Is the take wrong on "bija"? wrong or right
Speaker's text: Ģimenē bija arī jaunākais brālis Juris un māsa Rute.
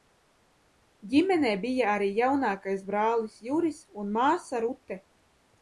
right